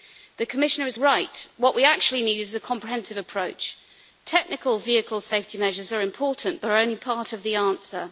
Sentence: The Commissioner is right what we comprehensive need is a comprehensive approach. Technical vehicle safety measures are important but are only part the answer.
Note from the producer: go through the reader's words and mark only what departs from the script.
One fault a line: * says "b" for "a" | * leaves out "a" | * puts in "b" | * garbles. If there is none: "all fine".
* says "actually" for "comprehensive"
* puts in "of"